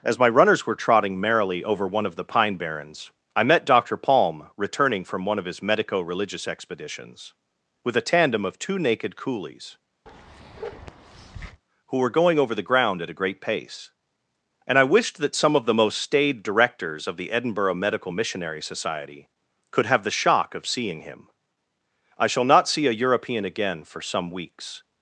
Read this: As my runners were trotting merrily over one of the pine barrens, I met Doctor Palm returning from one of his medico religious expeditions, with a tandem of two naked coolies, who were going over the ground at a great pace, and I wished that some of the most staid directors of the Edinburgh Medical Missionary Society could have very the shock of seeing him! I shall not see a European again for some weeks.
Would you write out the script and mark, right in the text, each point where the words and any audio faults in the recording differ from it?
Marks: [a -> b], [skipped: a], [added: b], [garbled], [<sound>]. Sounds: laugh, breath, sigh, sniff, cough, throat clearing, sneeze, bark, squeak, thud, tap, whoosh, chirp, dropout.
As my runners were trotting merrily over one of the pine barrens, I met Doctor Palm returning from one of his medico religious expeditions, with a tandem of two naked coolies, [bark] who were going over the ground at a great pace, and I wished that some of the most staid directors of the Edinburgh Medical Missionary Society could have [skipped: very] the shock of seeing him! I shall not see a European again for some weeks.